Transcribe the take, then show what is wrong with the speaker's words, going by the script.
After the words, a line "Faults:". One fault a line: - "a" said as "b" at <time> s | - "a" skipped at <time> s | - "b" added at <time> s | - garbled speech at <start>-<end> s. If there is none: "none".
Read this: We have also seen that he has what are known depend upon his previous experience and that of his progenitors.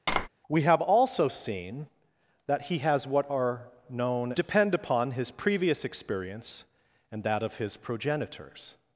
We have also seen that he has what are known depend upon his previous experience and that of his progenitors.
Faults:
none